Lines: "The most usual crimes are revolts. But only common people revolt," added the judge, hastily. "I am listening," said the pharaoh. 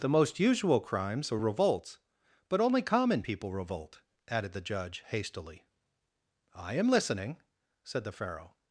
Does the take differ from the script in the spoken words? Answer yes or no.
no